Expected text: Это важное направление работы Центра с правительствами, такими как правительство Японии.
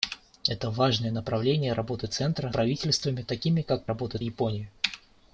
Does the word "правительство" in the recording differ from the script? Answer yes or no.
yes